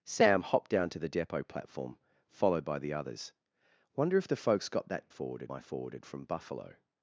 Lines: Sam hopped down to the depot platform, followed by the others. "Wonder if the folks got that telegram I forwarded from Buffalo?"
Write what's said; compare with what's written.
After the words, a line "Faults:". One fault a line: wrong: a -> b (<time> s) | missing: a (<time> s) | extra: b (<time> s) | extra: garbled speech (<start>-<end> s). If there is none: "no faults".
Sam hopped down to the depot platform, followed by the others. "Wonder if the folks got that forwarded I forwarded from Buffalo?"
Faults:
wrong: telegram -> forwarded (5.1 s)